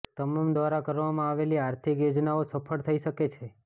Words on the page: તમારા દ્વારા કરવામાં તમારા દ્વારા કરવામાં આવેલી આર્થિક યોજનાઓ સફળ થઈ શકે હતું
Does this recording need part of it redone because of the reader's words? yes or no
yes